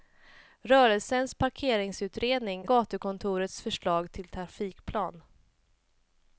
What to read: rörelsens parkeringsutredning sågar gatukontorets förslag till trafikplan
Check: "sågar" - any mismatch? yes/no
yes